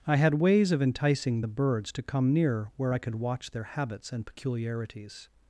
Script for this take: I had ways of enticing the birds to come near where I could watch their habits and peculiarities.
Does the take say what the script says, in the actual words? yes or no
yes